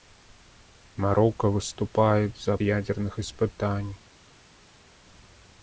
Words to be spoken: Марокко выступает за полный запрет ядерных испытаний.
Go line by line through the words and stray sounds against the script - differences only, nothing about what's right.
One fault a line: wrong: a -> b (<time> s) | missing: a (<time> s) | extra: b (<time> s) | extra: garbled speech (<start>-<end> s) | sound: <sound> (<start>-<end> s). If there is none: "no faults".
missing: полный запрет (2.6 s)